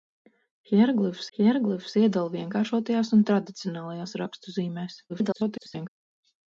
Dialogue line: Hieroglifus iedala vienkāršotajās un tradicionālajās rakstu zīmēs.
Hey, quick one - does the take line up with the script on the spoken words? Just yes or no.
no